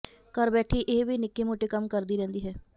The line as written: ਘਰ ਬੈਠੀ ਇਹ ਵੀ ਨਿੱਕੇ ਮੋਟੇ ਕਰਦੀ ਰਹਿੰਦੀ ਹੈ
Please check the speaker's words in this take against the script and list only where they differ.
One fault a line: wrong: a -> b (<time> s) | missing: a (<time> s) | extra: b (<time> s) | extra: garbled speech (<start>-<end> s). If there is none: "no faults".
extra: ਕੰਮ (1.7 s)